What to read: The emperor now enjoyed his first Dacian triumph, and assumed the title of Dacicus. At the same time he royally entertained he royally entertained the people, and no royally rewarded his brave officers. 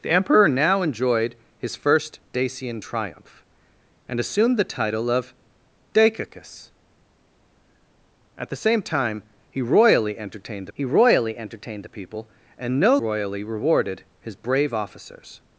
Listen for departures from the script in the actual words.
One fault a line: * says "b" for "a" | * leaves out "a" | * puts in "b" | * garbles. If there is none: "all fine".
all fine